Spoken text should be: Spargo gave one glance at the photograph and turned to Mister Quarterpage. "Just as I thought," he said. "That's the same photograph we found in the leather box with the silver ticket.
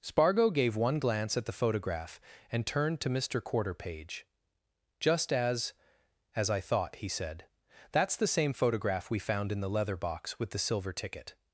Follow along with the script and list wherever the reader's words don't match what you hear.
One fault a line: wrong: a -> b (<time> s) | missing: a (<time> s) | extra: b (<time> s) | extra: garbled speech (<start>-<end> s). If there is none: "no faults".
extra: as (6.3 s)